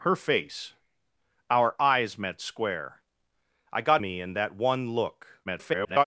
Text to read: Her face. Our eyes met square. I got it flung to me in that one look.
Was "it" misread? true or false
true